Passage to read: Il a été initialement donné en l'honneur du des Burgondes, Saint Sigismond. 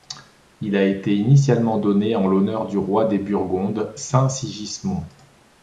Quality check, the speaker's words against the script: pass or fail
fail